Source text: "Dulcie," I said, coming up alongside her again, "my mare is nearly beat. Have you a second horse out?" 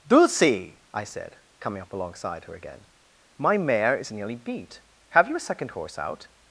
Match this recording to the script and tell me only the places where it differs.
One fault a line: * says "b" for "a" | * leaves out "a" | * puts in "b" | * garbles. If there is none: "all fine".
all fine